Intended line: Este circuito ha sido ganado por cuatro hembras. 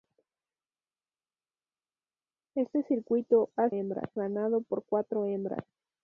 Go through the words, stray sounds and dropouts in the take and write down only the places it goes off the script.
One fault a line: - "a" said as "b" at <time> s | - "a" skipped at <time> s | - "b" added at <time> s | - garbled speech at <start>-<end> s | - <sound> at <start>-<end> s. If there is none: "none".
- "sido" said as "hembras" at 3.7 s